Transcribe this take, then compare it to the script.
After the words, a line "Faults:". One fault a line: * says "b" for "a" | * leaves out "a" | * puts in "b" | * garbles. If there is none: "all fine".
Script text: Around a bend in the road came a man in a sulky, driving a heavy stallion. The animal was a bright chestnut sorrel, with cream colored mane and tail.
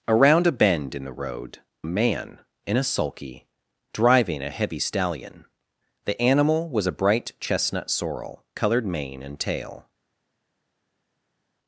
Around a bend in the road a man in a sulky, driving a heavy stallion. The animal was a bright chestnut sorrel, colored mane and tail.
Faults:
* leaves out "came"
* leaves out "with cream"